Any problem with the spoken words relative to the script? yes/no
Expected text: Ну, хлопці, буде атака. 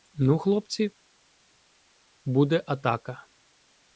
no